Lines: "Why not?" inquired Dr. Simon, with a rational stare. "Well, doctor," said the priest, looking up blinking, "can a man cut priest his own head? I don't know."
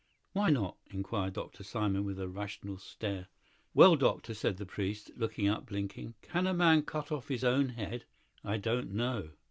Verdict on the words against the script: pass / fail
fail